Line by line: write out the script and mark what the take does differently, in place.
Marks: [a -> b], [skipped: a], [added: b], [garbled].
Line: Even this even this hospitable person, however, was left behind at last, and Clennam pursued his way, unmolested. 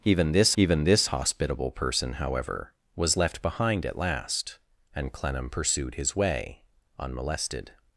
Even this even this hospitable person, however, was left behind at last, and Clennam pursued his way, unmolested.